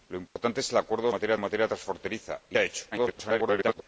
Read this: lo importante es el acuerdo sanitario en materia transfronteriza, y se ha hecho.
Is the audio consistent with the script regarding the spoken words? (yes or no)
no